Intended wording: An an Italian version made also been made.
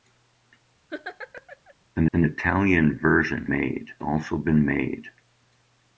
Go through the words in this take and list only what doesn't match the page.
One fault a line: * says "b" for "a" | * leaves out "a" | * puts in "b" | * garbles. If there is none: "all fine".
all fine